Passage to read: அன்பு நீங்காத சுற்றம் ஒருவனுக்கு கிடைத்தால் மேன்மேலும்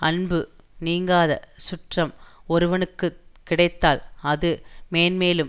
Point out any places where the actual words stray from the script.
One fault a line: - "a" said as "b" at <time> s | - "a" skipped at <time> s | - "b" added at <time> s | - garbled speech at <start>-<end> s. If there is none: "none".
- "அது" added at 4.2 s